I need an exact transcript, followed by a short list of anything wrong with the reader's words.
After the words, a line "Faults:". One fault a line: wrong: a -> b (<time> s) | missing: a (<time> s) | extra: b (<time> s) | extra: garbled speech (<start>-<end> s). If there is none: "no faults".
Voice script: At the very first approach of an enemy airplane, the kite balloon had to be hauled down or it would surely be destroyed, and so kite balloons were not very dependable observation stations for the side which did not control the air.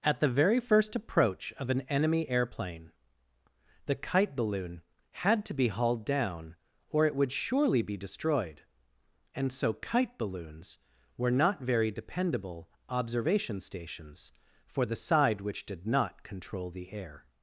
At the very first approach of an enemy airplane, the kite balloon had to be hauled down or it would surely be destroyed, and so kite balloons were not very dependable observation stations for the side which did not control the air.
Faults:
no faults